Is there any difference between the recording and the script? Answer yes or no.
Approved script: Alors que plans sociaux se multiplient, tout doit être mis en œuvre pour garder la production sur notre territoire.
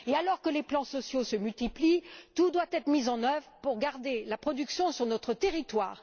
yes